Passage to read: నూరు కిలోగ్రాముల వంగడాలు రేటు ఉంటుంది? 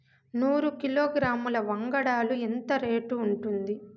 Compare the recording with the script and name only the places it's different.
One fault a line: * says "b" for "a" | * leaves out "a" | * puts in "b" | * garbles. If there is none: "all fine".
* puts in "ఎంత"